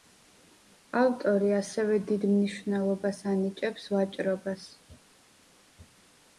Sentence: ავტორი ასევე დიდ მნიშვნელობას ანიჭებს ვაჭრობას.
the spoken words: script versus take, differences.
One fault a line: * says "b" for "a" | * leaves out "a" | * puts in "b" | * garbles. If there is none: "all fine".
all fine